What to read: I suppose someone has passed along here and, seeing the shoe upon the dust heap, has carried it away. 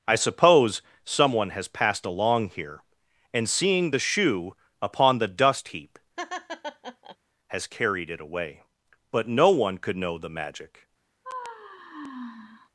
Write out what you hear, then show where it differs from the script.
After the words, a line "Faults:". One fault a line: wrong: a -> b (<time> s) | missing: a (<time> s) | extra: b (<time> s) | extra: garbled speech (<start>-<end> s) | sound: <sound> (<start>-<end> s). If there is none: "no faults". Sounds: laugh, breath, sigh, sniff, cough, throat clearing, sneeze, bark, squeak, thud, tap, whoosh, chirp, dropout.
I suppose someone has passed along here and, seeing the shoe upon the dust heap, has carried it away. But no one could know the magic
Faults:
sound: laugh (6.2-7.2 s)
extra: But no one could know the magic (9.1 s)
sound: sigh (11.2-12.7 s)